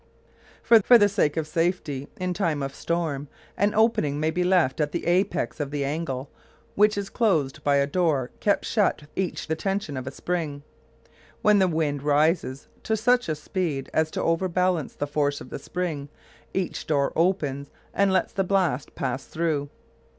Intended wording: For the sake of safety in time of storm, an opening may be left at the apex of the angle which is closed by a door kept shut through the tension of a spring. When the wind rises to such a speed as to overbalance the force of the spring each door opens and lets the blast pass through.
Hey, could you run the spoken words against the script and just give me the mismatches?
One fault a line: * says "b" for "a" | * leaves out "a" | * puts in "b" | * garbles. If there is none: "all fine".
* puts in "for"
* says "each" for "through"